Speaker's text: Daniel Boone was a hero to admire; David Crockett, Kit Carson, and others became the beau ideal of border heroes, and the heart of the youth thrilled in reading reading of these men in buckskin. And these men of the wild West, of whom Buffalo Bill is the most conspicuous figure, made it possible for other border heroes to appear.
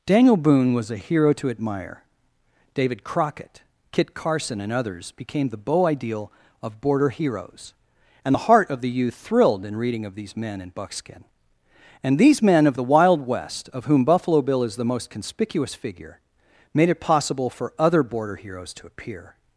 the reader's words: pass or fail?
fail